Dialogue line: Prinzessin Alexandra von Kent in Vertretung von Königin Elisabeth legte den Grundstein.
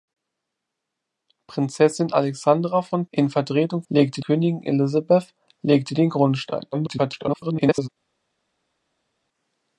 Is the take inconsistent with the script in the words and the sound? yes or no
yes